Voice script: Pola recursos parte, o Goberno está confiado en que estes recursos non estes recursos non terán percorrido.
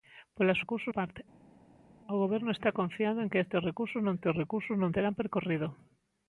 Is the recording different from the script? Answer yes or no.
no